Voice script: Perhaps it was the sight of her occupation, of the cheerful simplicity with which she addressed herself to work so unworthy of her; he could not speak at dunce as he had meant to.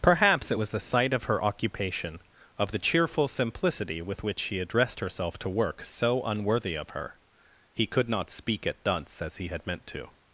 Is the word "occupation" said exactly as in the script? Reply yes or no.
yes